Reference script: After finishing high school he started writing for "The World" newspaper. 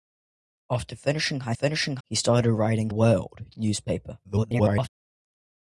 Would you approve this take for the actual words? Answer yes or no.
no